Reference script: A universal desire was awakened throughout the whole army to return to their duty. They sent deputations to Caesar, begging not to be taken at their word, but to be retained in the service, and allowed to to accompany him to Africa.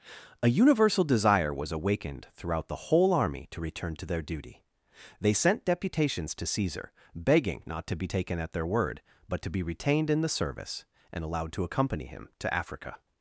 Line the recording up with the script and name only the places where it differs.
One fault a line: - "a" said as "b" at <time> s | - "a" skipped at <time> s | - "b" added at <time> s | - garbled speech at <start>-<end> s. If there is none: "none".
- "to" skipped at 11.6 s